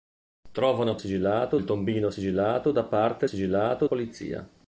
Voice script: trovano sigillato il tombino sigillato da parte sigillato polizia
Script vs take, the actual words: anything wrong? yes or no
no